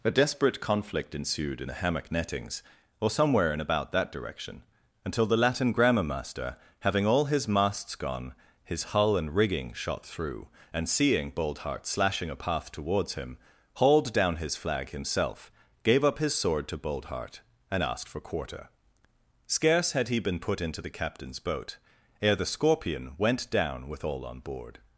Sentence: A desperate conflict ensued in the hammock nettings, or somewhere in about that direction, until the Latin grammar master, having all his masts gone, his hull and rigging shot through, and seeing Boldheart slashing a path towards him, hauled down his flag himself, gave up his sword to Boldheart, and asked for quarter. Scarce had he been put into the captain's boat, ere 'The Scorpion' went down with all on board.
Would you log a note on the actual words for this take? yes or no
no